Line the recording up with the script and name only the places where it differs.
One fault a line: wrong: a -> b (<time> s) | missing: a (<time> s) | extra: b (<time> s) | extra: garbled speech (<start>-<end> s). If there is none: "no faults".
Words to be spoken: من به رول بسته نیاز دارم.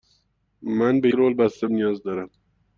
no faults